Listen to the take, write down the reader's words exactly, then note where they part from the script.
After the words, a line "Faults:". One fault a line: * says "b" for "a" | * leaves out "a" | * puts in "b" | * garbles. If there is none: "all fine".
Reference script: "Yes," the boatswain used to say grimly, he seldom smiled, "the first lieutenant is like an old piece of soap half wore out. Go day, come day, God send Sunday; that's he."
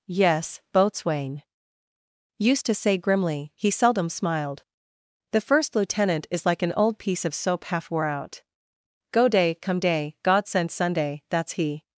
"Yes," boatswain used to say grimly, he seldom smiled, "the first lieutenant is like an old piece of soap half wore out. Go day, come day, God send Sunday; that's he."
Faults:
* leaves out "the"